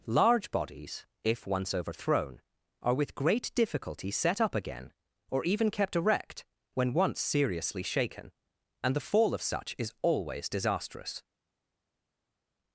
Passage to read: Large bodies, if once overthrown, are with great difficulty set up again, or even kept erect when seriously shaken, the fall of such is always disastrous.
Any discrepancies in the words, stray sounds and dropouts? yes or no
yes